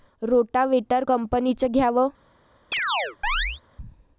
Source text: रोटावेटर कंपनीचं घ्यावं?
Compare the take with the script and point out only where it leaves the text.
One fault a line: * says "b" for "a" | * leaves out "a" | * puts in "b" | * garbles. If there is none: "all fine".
all fine